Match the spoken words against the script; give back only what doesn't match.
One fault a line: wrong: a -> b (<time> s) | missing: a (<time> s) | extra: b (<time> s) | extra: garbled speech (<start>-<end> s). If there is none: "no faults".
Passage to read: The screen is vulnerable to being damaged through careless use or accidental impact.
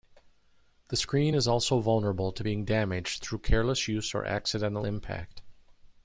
extra: also (1.4 s)